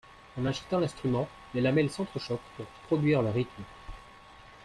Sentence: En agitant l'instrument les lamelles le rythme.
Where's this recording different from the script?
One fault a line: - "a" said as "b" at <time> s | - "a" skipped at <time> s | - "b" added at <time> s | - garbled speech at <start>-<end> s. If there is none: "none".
- "s'entrechoquent pour produire" added at 1.9 s